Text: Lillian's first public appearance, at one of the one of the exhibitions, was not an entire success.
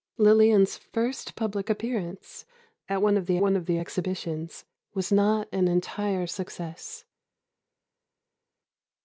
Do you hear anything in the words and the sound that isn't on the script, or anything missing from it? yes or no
no